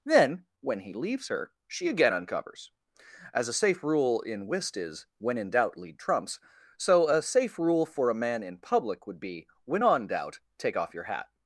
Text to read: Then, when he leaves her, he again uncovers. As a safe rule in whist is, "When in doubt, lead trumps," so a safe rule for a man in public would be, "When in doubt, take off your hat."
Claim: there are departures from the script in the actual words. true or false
true